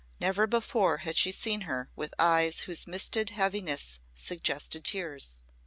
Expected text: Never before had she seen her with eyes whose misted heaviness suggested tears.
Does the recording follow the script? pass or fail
pass